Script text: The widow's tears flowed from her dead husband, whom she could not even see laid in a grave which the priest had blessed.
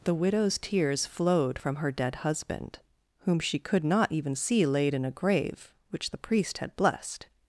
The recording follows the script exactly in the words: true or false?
true